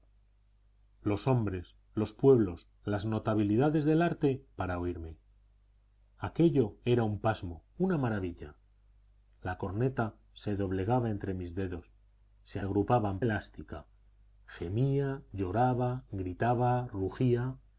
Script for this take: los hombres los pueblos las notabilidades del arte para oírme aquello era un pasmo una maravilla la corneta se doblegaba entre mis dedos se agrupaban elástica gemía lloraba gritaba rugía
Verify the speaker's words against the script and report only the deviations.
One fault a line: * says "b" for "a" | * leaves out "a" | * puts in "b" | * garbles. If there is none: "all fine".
all fine